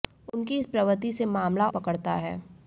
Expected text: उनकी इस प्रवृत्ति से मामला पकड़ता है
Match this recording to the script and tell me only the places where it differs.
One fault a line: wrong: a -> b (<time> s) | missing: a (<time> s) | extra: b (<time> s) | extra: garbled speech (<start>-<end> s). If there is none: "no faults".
no faults